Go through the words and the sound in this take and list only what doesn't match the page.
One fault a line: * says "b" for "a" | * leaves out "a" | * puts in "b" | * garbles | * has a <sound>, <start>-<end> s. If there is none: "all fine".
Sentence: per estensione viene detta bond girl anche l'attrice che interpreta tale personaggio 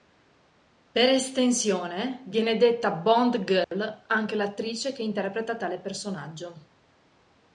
* has a dropout, 3.6-3.7 s